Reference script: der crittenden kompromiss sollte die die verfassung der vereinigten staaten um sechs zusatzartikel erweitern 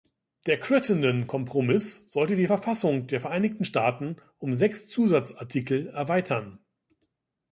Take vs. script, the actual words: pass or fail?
fail